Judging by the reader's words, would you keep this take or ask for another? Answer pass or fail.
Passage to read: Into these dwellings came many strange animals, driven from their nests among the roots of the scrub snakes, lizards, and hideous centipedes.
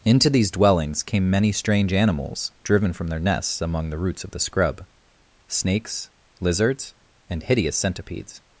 pass